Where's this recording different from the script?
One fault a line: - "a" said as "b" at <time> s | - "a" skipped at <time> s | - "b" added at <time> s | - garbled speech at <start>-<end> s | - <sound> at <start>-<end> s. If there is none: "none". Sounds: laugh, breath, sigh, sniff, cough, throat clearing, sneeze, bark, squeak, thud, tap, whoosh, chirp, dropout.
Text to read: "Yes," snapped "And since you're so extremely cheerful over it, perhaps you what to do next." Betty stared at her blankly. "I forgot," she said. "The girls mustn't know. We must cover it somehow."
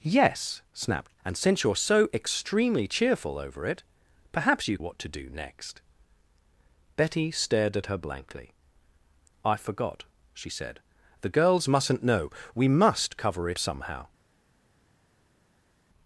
none